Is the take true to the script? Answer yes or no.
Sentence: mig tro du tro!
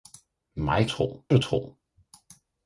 yes